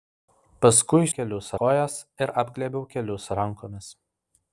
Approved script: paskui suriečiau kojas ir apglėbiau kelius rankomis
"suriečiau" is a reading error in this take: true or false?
true